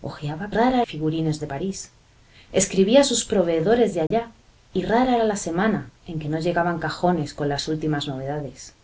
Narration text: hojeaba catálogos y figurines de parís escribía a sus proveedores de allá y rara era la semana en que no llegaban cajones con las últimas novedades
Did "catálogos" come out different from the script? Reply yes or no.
yes